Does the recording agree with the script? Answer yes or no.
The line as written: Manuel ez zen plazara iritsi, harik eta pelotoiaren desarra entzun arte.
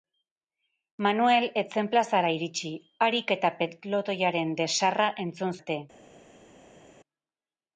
yes